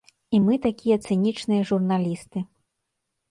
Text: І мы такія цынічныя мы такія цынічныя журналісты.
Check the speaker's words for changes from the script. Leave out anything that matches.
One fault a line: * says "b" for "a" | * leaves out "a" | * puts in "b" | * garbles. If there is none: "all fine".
* leaves out "мы такія цынічныя"